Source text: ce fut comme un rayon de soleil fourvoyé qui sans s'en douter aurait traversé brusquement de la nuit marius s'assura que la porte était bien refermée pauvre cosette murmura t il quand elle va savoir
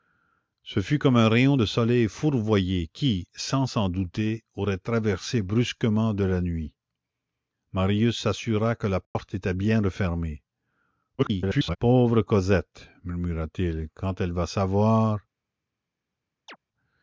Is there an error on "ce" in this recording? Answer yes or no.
no